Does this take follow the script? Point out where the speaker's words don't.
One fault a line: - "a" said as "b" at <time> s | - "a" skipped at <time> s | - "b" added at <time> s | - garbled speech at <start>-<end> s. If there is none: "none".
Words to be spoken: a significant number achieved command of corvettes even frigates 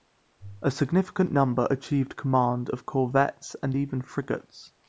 - "and" added at 3.6 s